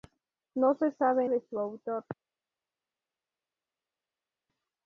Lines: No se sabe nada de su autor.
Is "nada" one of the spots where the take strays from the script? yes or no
yes